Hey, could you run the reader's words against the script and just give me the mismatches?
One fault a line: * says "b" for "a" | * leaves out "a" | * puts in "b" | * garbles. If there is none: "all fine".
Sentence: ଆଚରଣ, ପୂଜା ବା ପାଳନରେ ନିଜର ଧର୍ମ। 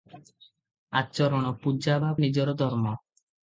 * leaves out "ପାଳନରେ"